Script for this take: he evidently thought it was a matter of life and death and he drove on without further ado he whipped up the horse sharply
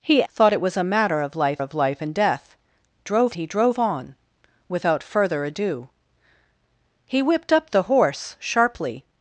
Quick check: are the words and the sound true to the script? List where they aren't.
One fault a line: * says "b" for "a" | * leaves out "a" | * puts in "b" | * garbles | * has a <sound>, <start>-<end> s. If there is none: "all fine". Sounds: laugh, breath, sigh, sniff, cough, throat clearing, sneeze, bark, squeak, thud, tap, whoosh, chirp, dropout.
* leaves out "evidently"
* puts in "of life"
* says "drove" for "and"